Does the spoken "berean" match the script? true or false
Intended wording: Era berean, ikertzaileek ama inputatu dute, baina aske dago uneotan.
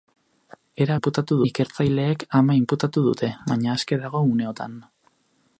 false